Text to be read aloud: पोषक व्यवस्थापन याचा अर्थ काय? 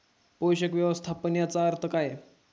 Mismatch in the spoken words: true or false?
false